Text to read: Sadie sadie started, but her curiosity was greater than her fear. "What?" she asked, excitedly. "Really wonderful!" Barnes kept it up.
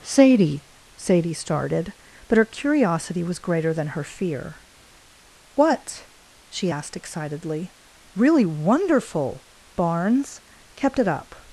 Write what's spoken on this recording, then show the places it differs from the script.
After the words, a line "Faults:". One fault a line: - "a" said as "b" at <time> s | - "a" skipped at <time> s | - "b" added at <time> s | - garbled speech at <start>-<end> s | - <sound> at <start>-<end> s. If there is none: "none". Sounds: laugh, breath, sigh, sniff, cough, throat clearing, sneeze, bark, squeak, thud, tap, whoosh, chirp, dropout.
Sadie sadie started, but her curiosity was greater than her fear. "What?" she asked, excitedly. "Really wonderful!" Barnes kept it up.
Faults:
none